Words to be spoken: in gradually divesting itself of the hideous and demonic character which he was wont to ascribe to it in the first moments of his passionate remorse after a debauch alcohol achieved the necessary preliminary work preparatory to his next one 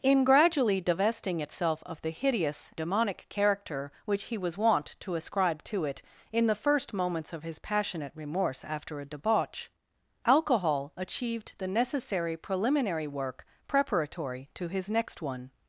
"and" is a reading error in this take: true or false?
true